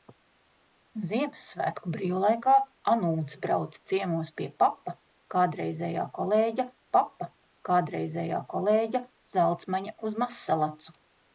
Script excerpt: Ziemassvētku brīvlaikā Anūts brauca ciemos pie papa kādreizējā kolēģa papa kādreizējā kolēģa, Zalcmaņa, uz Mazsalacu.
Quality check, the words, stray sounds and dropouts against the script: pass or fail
pass